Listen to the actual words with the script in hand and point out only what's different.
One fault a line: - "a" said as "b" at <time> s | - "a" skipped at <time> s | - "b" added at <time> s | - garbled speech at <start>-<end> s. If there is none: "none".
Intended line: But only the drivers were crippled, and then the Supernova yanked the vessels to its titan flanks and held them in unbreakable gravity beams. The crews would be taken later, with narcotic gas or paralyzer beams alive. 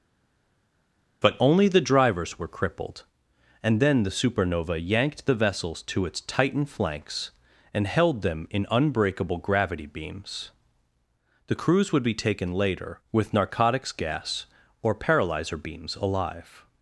- "narcotic" said as "narcotics" at 13.3 s